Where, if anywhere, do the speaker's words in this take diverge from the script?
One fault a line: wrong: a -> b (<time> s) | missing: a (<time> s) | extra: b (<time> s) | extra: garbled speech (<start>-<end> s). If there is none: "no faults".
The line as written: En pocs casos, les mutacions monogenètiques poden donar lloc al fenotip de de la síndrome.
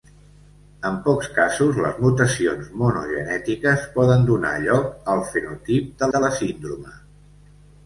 no faults